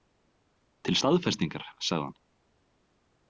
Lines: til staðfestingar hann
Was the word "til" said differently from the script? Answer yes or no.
no